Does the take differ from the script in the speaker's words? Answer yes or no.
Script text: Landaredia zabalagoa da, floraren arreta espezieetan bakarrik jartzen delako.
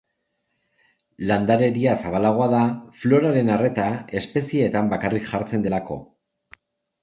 no